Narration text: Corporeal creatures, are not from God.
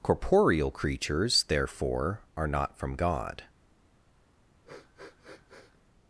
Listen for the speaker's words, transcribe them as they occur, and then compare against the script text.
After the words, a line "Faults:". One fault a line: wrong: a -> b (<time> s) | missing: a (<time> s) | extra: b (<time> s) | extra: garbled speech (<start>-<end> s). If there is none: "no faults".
Corporeal creatures, therefore, are not from God.
Faults:
extra: therefore (1.4 s)